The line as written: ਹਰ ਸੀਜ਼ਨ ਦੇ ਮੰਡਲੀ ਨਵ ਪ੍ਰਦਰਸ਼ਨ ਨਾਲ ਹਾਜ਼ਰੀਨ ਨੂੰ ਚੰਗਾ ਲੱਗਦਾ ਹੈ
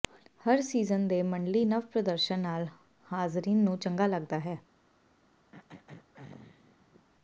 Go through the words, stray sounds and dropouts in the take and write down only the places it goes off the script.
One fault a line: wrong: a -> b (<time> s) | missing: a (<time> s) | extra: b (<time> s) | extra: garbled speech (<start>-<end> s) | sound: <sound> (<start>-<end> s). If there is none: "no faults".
sound: throat clearing (5.5-7.1 s)